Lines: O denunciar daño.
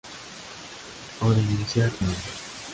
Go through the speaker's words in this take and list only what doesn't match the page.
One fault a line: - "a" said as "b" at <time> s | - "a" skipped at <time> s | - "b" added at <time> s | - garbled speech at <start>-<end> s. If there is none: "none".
none